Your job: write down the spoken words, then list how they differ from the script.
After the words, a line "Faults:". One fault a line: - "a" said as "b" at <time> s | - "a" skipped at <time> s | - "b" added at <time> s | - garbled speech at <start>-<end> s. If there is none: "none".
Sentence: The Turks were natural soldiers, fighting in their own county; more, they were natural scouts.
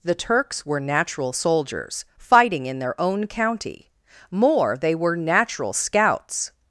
The Turks were natural soldiers, fighting in their own county; more, they were natural scouts.
Faults:
none